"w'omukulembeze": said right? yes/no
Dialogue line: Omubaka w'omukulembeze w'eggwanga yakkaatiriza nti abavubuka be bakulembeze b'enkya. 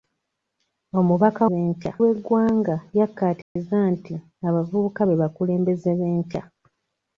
no